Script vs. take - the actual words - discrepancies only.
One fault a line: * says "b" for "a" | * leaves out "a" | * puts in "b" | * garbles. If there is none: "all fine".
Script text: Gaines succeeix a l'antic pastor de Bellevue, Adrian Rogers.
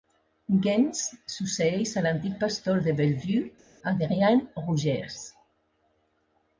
all fine